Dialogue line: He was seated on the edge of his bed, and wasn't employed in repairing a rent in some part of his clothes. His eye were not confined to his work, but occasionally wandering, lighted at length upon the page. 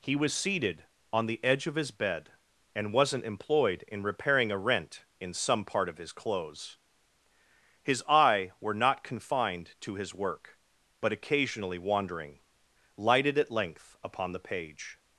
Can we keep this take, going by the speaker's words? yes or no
yes